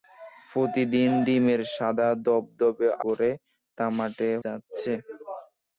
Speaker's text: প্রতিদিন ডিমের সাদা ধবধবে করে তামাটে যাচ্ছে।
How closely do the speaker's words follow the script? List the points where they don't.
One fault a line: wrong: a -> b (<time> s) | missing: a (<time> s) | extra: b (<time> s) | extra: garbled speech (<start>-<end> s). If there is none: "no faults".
no faults